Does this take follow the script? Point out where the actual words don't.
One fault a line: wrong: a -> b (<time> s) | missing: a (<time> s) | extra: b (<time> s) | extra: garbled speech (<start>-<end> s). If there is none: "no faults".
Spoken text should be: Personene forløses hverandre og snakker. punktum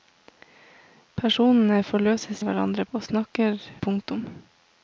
no faults